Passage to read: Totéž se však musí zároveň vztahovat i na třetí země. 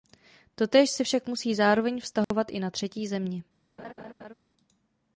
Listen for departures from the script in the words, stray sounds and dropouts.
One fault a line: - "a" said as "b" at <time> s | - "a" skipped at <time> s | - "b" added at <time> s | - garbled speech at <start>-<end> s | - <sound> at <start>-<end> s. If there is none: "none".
- dropout at 2.2-2.3 s
- laugh at 3.8-4.3 s